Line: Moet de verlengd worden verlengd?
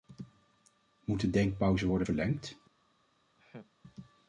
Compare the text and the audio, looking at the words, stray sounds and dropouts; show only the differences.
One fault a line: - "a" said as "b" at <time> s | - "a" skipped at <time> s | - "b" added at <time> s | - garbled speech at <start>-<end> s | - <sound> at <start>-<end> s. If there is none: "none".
- "verlengd" said as "denkpauze" at 1.3 s
- laugh at 3.4-3.7 s